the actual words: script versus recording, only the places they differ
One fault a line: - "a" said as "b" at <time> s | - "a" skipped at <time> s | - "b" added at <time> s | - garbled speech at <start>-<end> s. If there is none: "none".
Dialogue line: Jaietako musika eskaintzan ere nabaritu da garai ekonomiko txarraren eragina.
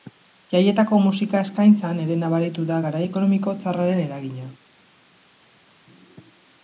none